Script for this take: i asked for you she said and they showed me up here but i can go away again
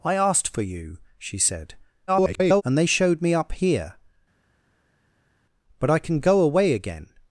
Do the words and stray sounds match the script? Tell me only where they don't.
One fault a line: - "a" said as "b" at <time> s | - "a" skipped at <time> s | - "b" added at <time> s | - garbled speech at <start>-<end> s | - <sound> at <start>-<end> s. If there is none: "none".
- garbled speech at 2.1-2.6 s